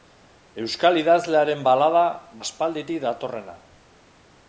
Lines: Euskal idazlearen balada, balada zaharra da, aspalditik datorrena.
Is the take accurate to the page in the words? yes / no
no